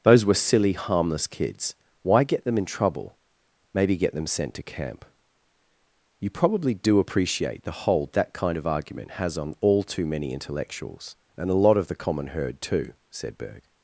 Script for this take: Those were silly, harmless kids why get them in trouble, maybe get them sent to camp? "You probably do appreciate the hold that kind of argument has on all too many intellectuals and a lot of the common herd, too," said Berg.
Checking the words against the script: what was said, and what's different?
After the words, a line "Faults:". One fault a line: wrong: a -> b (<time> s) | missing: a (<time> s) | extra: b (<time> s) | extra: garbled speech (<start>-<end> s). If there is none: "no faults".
Those were silly, harmless kids why get them in trouble, maybe get them sent to camp? "You probably do appreciate the hold that kind of argument has on all too many intellectuals and a lot of the common herd, too," said Berg.
Faults:
no faults